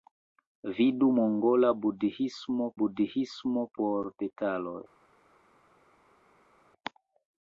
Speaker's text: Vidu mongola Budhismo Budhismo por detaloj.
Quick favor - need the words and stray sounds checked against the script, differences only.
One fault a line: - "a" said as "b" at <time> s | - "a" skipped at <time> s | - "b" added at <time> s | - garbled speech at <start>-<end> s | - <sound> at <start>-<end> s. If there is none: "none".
none